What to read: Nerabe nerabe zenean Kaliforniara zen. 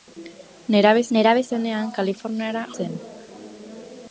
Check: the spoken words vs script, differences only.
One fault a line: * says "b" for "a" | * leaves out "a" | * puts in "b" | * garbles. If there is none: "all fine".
all fine